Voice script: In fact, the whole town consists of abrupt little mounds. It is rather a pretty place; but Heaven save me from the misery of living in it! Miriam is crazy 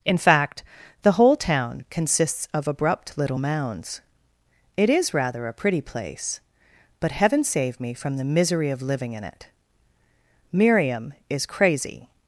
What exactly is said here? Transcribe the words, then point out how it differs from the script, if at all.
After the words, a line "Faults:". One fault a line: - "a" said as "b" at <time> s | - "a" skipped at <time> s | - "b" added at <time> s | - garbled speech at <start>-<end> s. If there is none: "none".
In fact, the whole town consists of abrupt little mounds. It is rather a pretty place; but Heaven save me from the misery of living in it! Miriam is crazy
Faults:
none